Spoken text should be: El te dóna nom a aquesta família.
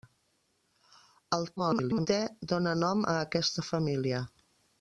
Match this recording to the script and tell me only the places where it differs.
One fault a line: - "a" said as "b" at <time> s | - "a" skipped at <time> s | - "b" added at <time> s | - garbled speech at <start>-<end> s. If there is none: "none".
- garbled speech at 1.6-2.1 s